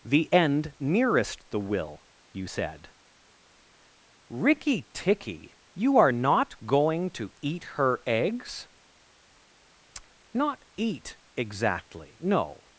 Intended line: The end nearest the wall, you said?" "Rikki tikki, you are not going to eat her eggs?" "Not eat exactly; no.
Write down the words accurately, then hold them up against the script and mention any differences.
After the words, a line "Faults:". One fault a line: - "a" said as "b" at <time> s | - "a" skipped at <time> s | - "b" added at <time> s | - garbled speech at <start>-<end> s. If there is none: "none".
The end nearest the will, you said?" "Rikki tikki, you are not going to eat her eggs?" "Not eat exactly; no.
Faults:
- "wall" said as "will" at 1.6 s